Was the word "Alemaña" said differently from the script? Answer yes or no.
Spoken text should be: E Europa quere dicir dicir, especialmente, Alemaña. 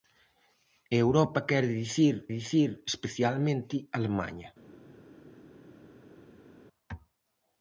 no